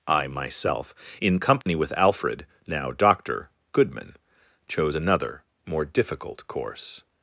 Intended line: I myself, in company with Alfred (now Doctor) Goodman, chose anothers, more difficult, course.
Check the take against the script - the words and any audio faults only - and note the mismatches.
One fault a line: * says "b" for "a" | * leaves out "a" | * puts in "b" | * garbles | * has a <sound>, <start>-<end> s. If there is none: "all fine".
* has a dropout, 1.6-1.7 s
* says "another" for "anothers"